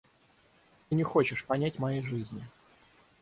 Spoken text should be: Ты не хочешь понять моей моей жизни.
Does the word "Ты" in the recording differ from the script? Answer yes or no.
no